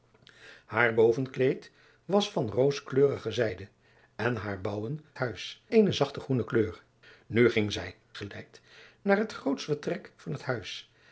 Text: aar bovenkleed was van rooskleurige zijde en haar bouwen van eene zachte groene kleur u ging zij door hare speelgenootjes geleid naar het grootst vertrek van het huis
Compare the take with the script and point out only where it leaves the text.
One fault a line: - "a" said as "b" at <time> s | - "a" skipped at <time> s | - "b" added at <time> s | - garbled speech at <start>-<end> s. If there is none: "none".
- "van" said as "huis" at 5.1 s
- "door hare speelgenootjes" skipped at 7.9 s